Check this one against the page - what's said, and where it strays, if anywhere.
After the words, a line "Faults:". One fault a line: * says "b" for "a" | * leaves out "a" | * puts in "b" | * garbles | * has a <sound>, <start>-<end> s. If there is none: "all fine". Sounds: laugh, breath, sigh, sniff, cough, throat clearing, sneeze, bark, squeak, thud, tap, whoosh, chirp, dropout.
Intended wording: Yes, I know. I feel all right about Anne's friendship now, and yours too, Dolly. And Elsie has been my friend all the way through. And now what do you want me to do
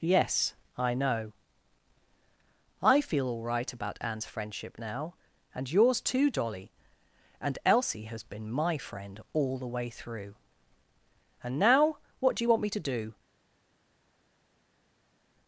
Yes, I know. I feel all right about Anne's friendship now, and yours too, Dolly. And Elsie has been my friend all the way through. And now what do you want me to do
Faults:
all fine